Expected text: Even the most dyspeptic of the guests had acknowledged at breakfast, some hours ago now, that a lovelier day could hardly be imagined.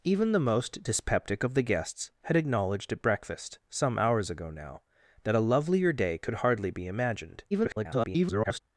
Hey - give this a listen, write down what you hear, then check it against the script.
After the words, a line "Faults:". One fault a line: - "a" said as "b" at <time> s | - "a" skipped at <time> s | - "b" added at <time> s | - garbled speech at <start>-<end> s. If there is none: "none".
Even the most dyspeptic of the guests had acknowledged at breakfast, some hours ago now, that a lovelier day could hardly be imagined. [garbled]
Faults:
- garbled speech at 7.5-8.6 s